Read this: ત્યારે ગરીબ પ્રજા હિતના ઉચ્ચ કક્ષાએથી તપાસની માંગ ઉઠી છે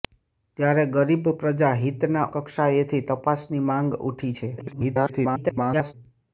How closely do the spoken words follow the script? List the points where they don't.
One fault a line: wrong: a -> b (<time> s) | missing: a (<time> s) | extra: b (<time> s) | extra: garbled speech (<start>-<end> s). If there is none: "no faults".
missing: ઉચ્ચ (2.2 s)
extra: garbled speech (4.6-5.9 s)